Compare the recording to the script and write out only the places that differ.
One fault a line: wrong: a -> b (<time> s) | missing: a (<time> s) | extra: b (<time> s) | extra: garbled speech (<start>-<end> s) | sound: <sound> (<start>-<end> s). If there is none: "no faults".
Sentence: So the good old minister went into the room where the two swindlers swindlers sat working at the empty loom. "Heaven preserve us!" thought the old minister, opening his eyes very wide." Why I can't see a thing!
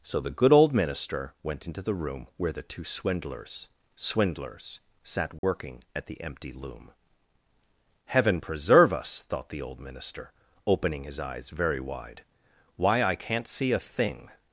sound: dropout (5.4-5.4 s)